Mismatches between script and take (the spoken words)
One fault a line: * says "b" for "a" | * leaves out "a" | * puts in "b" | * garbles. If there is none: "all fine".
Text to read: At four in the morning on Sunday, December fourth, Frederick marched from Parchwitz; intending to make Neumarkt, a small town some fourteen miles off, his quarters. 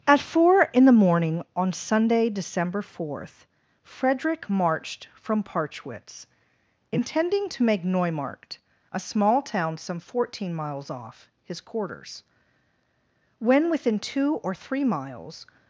* puts in "When within two or three miles"